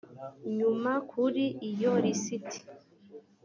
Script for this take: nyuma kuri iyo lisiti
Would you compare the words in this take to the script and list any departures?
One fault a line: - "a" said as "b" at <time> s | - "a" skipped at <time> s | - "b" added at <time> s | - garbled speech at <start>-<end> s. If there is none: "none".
none